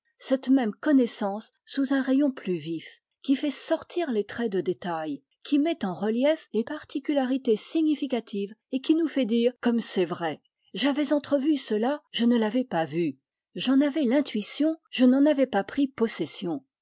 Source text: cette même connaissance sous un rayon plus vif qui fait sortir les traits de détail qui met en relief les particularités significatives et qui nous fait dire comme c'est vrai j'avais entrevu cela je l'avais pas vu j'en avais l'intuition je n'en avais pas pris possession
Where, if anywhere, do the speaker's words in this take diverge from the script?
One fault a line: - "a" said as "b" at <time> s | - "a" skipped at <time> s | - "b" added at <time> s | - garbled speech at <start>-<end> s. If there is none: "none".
- "ne" added at 12.2 s